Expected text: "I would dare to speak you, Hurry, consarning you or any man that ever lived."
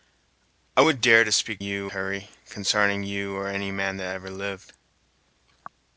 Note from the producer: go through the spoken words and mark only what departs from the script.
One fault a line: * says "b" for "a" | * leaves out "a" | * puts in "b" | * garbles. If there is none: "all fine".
all fine